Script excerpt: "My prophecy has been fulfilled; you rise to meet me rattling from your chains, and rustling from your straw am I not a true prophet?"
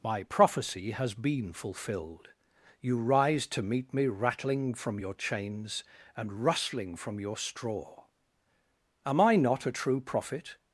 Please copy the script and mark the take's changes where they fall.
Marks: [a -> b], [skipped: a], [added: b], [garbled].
"My prophecy has been fulfilled; you rise to meet me rattling from your chains, and rustling from your straw am I not a true prophet?"